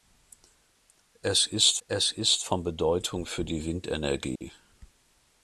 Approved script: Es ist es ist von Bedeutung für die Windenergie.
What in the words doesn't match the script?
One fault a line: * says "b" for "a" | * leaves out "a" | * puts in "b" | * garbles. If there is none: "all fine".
all fine